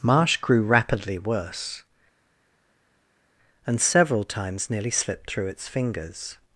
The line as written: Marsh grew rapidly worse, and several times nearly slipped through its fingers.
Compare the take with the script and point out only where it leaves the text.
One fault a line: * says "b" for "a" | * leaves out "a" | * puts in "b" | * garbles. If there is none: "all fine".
all fine